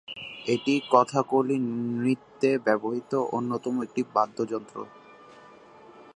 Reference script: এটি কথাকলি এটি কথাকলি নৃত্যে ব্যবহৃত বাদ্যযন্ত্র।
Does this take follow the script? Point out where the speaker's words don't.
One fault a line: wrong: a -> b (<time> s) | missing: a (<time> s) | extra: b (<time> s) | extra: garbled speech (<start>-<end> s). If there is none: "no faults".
wrong: এটি কথাকলি নৃত্যে ব্যবহৃত -> নৃত্যে ব্যবহৃত অন্যতম একটি (1.9 s)